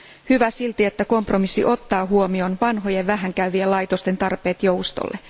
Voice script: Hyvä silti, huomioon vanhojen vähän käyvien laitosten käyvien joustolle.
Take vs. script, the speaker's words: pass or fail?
fail